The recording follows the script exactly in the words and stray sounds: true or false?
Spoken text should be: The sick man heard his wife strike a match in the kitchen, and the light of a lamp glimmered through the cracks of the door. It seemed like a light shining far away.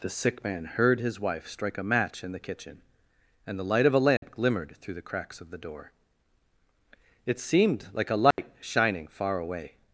false